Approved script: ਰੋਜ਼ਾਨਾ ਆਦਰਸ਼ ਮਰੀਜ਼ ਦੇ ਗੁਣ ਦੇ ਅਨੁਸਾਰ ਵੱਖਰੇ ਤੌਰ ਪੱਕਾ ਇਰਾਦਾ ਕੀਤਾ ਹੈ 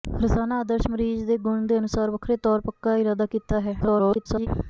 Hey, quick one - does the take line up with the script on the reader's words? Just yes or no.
no